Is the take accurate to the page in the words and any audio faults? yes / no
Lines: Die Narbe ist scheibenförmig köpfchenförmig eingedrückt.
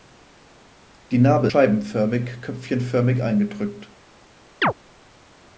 no